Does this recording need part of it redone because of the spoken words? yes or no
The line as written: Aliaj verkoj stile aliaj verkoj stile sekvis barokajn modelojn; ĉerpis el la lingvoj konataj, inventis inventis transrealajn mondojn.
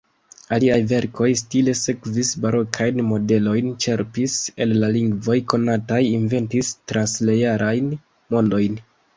yes